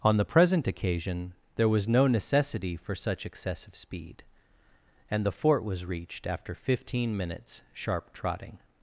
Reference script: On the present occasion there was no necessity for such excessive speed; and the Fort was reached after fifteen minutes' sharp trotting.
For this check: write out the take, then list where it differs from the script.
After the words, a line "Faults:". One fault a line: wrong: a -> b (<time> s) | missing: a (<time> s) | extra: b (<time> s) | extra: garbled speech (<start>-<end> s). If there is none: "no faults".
On the present occasion there was no necessity for such excessive speed; and the Fort was reached after fifteen minutes' sharp trotting.
Faults:
no faults